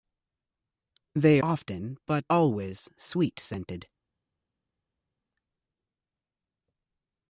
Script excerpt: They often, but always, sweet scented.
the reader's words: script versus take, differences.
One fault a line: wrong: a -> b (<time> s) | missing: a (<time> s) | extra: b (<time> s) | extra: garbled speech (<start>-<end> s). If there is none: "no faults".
no faults